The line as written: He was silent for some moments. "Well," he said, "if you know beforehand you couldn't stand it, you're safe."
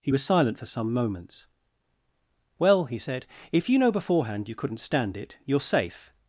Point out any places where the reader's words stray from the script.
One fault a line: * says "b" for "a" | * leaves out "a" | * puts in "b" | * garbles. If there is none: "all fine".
all fine